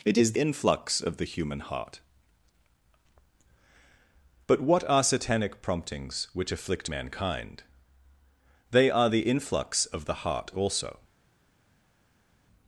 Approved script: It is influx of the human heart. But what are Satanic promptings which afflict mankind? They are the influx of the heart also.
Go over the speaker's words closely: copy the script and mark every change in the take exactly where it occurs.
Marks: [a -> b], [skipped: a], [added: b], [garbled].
It is influx of the human heart. But what are Satanic promptings which afflict mankind? They are the influx of the heart also.